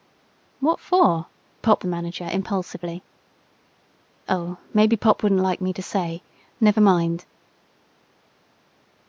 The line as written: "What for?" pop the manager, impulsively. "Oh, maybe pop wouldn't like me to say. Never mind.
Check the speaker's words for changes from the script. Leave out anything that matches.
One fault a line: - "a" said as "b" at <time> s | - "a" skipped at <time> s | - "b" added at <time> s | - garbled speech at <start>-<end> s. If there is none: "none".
none